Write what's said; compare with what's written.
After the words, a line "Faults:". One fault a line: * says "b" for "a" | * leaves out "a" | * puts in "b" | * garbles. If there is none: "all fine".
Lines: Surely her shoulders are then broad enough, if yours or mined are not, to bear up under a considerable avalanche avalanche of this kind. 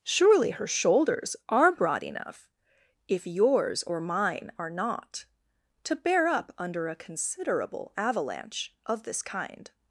Surely her shoulders are broad enough, if yours or mine are not, to bear up under a considerable avalanche of this kind.
Faults:
* leaves out "then"
* says "mine" for "mined"
* leaves out "avalanche"